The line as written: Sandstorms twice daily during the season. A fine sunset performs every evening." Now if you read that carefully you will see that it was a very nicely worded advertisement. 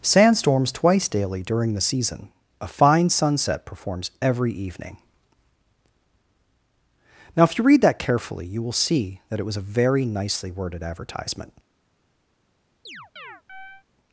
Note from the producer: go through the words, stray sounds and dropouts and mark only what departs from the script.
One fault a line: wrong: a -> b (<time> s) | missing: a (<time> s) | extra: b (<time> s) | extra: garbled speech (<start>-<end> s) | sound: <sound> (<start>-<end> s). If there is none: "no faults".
sound: chirp (12.9-13.8 s)